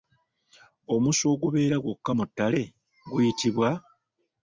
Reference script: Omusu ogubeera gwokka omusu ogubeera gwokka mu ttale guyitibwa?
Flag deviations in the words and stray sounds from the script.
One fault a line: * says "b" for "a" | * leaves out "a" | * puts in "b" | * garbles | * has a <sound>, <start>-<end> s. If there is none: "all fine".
* leaves out "omusu ogubeera gwokka"